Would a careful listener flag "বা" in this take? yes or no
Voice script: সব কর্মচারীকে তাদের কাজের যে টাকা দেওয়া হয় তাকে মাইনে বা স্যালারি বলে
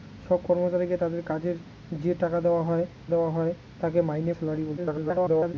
yes